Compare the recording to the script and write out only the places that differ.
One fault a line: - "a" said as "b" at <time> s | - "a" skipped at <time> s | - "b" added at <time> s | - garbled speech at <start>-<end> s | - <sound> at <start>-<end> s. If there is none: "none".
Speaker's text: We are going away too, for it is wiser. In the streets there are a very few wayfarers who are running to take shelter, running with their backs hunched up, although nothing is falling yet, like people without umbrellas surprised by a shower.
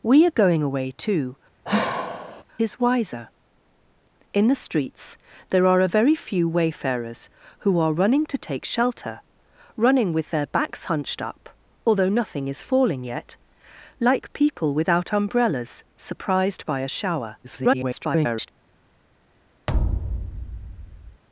- "for it" skipped at 1.4 s
- sigh at 1.6-2.4 s
- garbled speech at 17.4-18.5 s
- thud at 19.7-21.2 s